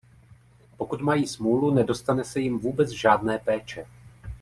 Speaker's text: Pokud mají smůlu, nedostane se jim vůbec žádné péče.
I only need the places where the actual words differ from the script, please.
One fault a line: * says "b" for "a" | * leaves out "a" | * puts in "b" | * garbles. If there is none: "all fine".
all fine